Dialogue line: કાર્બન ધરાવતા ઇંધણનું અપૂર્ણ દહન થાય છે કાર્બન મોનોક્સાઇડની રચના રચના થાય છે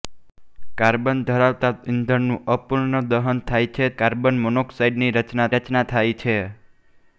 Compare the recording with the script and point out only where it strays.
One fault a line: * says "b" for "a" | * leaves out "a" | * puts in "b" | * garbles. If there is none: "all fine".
all fine